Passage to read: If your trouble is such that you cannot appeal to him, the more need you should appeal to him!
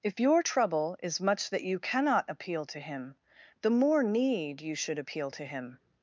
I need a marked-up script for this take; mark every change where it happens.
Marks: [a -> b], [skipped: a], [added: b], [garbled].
If your trouble is [such -> much] that you cannot appeal to him, the more need you should appeal to him!